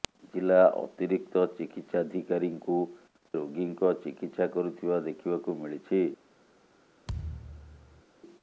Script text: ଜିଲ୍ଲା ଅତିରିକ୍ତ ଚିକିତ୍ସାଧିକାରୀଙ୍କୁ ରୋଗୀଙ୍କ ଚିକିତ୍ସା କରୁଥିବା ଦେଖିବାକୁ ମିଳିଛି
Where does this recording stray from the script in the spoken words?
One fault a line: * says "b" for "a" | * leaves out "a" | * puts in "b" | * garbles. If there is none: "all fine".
all fine